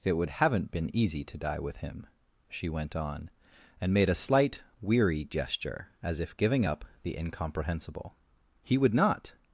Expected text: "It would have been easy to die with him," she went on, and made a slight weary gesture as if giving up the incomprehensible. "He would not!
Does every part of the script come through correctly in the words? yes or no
no